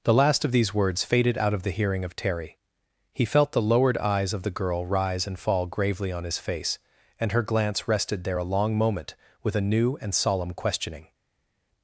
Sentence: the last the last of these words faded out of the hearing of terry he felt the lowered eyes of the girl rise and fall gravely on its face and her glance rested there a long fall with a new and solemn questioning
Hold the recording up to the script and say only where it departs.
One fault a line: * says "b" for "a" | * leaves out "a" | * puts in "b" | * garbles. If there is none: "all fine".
* leaves out "the last"
* says "his" for "its"
* says "moment" for "fall"